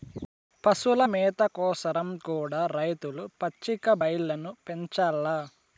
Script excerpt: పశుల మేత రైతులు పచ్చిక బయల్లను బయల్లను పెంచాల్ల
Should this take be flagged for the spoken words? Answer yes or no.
yes